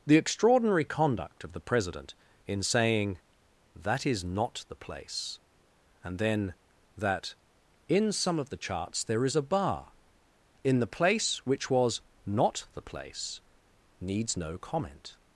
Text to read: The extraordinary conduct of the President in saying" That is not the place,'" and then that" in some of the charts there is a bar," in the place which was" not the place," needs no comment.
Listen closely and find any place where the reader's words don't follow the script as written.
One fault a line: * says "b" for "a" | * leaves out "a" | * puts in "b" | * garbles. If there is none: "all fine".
all fine